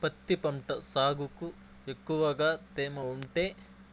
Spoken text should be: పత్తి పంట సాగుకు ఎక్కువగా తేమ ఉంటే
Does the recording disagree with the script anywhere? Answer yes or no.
no